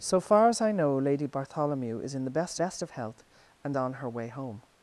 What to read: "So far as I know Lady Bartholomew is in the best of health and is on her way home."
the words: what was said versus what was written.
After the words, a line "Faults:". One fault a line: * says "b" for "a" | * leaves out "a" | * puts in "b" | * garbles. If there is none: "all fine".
"So far as I know Lady Bartholomew is in the best best of health and on her way home."
Faults:
* puts in "best"
* leaves out "is"